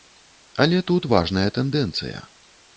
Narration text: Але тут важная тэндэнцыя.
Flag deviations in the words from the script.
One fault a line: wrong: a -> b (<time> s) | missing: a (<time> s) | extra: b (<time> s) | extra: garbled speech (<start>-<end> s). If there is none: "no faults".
no faults